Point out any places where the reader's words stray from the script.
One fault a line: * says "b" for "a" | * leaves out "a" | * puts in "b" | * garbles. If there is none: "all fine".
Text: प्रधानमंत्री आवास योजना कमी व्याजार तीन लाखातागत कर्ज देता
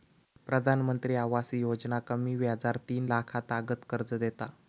all fine